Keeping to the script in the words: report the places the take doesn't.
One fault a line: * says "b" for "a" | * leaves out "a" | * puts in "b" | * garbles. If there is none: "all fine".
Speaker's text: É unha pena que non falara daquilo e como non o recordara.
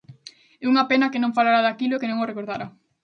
* says "que" for "como"